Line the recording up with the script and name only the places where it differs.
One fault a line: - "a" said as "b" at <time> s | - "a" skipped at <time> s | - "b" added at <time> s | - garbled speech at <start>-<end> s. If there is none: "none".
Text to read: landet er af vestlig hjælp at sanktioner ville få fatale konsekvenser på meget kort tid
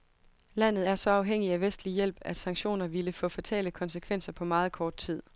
- "så afhængig" added at 0.9 s